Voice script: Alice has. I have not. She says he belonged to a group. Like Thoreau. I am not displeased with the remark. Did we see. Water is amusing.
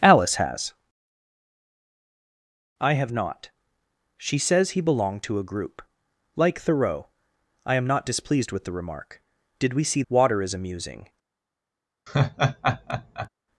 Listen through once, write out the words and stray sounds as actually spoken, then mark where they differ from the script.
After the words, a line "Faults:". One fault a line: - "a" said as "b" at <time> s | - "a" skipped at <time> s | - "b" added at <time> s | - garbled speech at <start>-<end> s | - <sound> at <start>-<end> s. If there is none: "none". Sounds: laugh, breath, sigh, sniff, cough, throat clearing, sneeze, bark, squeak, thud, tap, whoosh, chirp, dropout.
Alice has. I have not. She says he belonged to a group. Like Thoreau. I am not displeased with the remark. Did we see. Water is amusing.
Faults:
- laugh at 12.1-13.3 s